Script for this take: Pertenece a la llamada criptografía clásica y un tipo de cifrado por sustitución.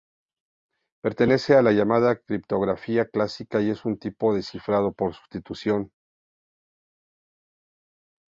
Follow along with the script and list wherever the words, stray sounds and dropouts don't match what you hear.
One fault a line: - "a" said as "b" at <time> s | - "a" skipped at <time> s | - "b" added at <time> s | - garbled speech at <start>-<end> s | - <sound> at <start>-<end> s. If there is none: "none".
- "es" added at 3.7 s